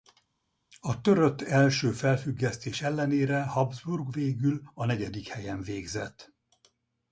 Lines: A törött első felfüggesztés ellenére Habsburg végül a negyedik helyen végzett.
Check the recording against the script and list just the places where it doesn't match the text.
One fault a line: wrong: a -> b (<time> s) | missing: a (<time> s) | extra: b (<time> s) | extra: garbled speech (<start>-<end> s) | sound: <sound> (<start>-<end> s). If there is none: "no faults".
no faults